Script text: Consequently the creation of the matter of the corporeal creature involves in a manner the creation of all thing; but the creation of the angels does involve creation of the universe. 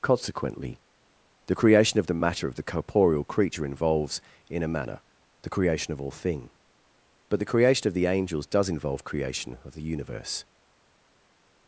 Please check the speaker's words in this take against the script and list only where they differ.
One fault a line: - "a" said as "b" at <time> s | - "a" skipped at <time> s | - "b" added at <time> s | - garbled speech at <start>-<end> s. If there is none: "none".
none